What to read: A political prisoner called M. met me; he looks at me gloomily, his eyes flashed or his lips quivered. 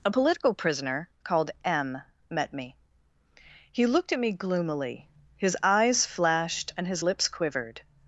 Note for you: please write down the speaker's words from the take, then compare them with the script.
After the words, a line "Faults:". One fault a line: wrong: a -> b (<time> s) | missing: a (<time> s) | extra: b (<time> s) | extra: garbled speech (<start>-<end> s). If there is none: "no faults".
A political prisoner called M. met me; he looked at me gloomily, his eyes flashed and his lips quivered.
Faults:
wrong: looks -> looked (3.9 s)
wrong: or -> and (6.8 s)